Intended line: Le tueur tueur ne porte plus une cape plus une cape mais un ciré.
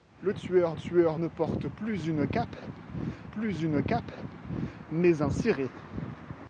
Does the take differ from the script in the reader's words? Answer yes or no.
no